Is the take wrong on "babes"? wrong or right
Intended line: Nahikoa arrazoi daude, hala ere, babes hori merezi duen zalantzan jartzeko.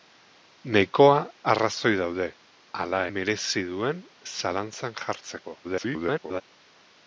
wrong